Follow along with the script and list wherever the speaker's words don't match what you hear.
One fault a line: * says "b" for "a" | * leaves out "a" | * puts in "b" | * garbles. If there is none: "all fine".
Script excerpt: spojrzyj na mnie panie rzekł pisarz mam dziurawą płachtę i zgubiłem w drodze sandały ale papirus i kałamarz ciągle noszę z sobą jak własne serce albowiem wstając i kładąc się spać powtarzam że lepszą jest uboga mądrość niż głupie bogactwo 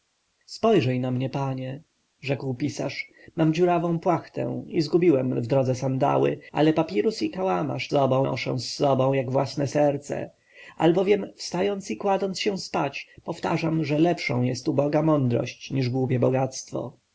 * says "sobą" for "ciągle"